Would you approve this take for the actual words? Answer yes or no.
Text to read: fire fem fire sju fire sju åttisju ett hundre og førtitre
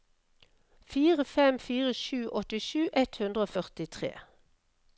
no